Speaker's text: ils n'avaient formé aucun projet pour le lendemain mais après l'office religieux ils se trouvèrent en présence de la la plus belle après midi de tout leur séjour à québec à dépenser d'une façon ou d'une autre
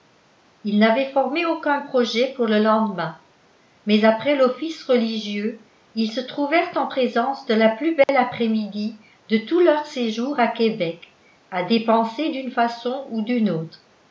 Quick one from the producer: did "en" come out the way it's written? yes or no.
yes